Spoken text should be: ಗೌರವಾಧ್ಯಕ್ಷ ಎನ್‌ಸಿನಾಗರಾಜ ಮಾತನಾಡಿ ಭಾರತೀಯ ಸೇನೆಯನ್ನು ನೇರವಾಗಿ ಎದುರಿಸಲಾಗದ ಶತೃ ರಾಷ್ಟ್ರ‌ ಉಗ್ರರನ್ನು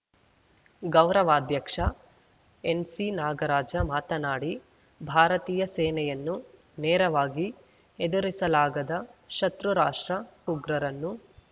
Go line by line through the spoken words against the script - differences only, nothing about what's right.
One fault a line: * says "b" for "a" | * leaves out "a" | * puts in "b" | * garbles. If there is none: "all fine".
all fine